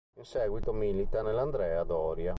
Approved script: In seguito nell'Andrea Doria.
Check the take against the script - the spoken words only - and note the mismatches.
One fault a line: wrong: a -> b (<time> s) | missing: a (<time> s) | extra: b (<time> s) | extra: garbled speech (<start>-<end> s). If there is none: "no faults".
extra: milita (0.7 s)